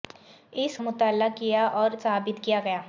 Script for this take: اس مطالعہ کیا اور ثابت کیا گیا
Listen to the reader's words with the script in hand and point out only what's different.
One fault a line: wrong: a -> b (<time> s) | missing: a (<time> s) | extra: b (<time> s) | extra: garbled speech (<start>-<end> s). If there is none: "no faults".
no faults